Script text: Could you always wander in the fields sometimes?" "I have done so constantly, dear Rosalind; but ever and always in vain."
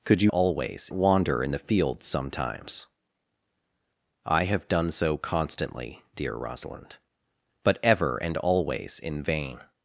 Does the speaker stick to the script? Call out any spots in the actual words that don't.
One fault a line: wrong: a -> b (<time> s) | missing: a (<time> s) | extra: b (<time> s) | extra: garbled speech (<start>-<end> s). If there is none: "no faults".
no faults